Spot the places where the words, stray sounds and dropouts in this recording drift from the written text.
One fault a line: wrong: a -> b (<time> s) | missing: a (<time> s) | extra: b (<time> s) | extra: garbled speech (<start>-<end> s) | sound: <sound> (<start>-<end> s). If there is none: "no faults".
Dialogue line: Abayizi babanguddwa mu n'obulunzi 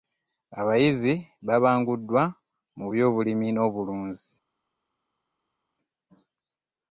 extra: by'obulimi (2.9 s)